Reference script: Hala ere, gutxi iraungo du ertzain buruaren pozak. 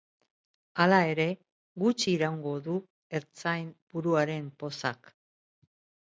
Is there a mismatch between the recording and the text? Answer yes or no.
no